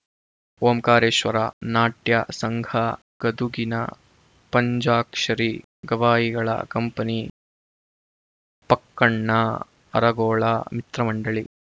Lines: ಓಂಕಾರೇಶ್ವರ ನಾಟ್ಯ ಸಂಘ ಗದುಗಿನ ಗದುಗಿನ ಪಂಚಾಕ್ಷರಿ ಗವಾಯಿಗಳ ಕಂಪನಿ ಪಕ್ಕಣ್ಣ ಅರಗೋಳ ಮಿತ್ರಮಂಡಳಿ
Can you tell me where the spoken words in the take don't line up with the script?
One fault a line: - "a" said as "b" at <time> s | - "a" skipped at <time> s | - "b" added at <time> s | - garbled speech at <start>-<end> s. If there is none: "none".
- "ಗದುಗಿನ" skipped at 3.8 s